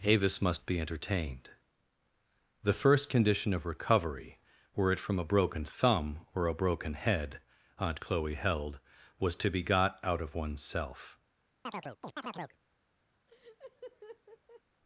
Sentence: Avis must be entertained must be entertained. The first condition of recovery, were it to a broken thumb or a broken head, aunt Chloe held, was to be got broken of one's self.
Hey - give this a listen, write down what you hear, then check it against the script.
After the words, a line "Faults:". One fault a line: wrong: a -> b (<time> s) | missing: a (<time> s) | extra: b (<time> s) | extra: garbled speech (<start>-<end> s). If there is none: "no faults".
Avis must be entertained. The first condition of recovery, were it from a broken thumb or a broken head, aunt Chloe held, was to be got out of one's self.
Faults:
missing: must be entertained (1.5 s)
wrong: to -> from (5.0 s)
wrong: broken -> out (10.0 s)